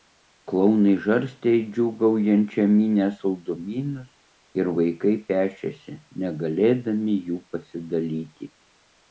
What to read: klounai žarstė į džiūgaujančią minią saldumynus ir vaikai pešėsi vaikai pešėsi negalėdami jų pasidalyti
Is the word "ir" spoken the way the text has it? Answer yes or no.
yes